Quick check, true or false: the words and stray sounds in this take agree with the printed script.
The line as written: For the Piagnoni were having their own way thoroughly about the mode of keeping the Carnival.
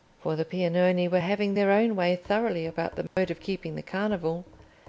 false